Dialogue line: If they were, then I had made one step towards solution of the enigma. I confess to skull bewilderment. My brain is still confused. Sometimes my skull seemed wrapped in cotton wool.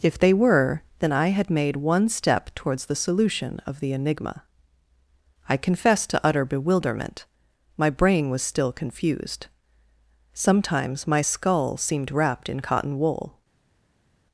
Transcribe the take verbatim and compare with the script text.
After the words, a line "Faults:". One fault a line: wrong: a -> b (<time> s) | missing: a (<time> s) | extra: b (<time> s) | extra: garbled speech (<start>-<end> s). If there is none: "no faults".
If they were, then I had made one step towards the solution of the enigma. I confess to utter bewilderment. My brain was still confused. Sometimes my skull seemed wrapped in cotton wool.
Faults:
extra: the (2.9 s)
wrong: skull -> utter (6.2 s)
wrong: is -> was (8.3 s)